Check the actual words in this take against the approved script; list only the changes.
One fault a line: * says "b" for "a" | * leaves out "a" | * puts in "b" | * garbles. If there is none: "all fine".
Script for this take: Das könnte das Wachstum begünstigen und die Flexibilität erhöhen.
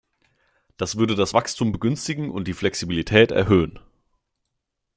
* says "würde" for "könnte"